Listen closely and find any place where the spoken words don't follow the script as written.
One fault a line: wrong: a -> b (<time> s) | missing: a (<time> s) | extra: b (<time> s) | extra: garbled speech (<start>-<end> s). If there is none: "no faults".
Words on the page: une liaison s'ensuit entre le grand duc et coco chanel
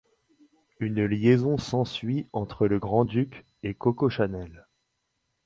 no faults